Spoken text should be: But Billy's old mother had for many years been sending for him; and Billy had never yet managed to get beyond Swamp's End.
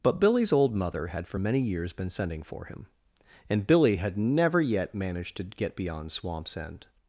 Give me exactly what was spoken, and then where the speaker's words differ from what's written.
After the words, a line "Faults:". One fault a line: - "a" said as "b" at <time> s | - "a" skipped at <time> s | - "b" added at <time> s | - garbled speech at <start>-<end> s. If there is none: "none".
But Billy's old mother had for many years been sending for him; and Billy had never yet managed to get beyond Swamp's End.
Faults:
none